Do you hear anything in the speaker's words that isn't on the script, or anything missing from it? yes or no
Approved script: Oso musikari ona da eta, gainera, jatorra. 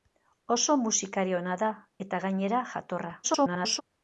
yes